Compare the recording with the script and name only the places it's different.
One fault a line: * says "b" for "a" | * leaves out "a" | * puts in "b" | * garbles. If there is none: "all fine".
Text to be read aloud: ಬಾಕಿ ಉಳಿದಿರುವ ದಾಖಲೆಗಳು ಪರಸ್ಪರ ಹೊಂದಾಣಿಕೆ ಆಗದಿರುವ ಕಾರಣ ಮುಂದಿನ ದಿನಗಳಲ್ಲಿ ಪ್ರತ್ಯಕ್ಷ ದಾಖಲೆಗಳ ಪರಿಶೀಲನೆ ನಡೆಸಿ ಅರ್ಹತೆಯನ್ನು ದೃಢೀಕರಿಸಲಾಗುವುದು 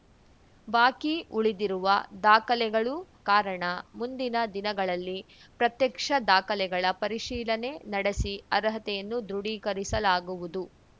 * leaves out "ಪರಸ್ಪರ ಹೊಂದಾಣಿಕೆ ಆಗದಿರುವ"